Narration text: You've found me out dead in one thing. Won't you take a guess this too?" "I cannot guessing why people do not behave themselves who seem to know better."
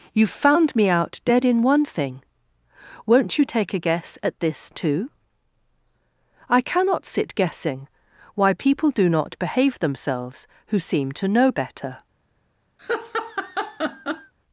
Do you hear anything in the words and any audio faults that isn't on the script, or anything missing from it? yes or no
yes